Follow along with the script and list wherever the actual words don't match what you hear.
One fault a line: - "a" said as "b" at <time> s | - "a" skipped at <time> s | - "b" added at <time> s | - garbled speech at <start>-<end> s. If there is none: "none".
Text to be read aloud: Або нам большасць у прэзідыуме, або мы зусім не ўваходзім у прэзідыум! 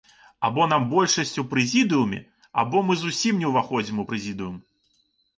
none